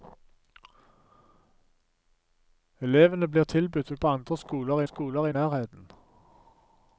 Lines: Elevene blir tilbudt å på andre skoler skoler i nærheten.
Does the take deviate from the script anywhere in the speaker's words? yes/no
no